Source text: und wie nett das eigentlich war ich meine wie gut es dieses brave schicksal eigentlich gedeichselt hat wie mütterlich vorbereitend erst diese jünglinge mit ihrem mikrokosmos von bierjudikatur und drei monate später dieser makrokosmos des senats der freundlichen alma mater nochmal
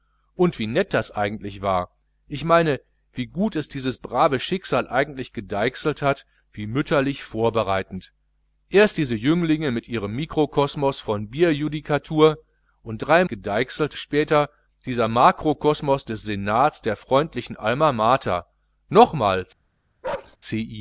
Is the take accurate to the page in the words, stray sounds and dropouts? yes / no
no